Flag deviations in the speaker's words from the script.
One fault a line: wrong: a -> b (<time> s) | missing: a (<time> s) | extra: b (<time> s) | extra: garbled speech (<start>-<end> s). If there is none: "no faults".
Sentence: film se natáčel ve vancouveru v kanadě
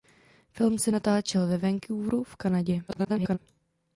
extra: garbled speech (2.9-3.4 s)